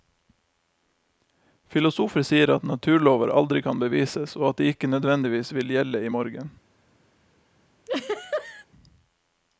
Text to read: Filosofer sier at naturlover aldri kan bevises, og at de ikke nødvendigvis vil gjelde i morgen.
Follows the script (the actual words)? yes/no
yes